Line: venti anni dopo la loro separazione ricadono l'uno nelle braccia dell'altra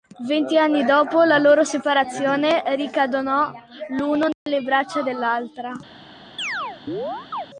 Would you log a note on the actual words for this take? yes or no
no